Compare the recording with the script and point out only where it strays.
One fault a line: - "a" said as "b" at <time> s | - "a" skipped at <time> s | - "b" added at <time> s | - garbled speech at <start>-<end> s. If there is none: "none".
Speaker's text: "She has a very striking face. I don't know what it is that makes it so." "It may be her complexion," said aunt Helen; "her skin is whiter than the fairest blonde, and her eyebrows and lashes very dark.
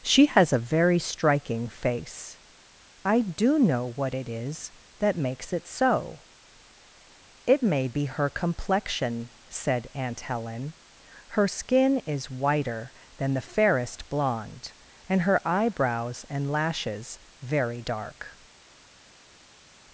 - "don't" said as "do" at 3.2 s